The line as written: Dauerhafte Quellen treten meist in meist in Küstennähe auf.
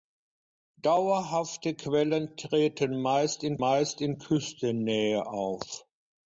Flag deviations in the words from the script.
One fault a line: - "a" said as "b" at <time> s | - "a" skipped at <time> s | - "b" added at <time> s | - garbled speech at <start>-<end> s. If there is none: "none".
none